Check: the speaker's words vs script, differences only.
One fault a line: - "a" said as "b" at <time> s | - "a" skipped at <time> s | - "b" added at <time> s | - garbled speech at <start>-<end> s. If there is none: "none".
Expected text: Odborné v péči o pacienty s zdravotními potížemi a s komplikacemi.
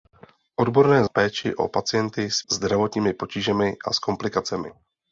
none